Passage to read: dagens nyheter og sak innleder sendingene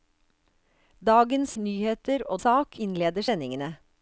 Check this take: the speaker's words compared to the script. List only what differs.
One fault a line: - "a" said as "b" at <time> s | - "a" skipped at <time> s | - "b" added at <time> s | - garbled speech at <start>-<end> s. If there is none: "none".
none